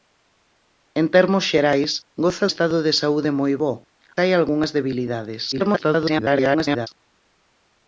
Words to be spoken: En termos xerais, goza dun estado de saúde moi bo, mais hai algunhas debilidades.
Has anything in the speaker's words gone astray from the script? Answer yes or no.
yes